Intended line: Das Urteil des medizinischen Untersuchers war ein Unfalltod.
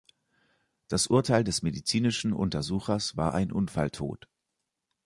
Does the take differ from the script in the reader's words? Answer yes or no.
no